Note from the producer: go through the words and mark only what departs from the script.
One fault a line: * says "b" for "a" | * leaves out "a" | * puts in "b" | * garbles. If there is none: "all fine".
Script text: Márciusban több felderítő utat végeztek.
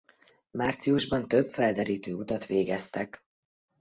all fine